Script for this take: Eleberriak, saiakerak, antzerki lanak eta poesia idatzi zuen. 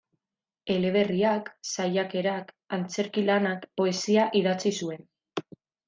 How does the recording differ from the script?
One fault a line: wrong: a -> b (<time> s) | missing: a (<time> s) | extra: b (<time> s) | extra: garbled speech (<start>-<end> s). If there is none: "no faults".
missing: eta (3.7 s)